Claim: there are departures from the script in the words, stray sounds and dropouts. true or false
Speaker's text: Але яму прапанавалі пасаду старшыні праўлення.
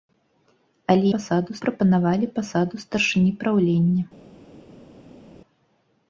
true